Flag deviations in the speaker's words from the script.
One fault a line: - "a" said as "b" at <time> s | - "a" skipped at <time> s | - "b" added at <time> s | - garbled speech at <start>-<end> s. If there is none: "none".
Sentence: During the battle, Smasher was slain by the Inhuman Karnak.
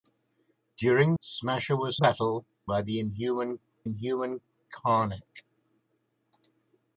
- "the battle" skipped at 1.1 s
- "slain" said as "battle" at 2.0 s
- "Inhuman" added at 3.8 s